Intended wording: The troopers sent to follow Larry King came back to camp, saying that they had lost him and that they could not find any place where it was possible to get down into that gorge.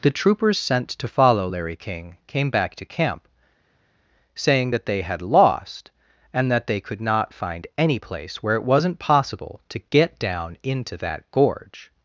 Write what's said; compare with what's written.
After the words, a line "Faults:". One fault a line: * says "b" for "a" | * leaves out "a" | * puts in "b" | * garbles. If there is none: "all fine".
The troopers sent to follow Larry King came back to camp, saying that they had lost and that they could not find any place where it wasn't possible to get down into that gorge.
Faults:
* leaves out "him"
* says "wasn't" for "was"